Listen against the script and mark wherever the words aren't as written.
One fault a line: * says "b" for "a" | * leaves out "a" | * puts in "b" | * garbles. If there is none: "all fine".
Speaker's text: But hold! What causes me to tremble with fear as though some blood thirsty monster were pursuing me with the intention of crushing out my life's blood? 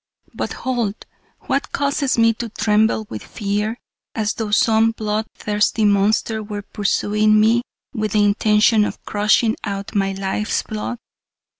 all fine